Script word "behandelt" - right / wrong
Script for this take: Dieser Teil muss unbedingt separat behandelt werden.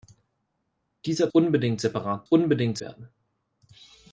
wrong